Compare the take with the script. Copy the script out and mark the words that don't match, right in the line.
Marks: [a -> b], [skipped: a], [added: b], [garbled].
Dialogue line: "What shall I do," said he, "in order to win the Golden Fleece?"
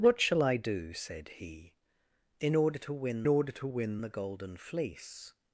"What shall I do," said he, "in order to win [added: order to win] the Golden Fleece?"